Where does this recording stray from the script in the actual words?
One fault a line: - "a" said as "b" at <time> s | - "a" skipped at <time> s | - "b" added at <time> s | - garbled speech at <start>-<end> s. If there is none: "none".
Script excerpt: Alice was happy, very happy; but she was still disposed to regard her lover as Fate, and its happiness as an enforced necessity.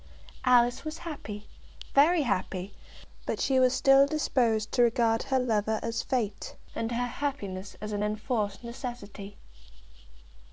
- "its" said as "her" at 6.9 s